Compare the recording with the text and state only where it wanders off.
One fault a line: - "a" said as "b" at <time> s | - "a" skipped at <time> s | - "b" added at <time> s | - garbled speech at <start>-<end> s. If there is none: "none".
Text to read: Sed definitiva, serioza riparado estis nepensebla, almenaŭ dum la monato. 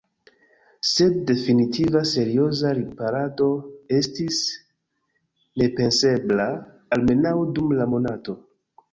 none